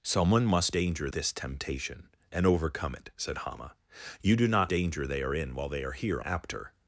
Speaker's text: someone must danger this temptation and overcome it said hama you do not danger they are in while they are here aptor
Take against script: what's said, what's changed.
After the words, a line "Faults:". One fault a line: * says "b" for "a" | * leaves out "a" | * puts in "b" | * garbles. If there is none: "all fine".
someone must danger this temptation and overcome it said hama you do not danger they are in while they are here aptor
Faults:
all fine